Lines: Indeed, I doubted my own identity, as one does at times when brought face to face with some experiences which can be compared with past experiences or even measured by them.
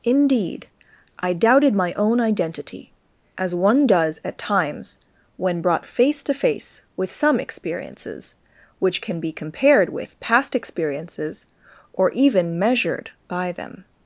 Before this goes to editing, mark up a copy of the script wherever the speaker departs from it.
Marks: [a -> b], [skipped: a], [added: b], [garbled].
Indeed, I doubted my own identity, as one does at times when brought face to face with some experiences which can be compared with past experiences or even measured by them.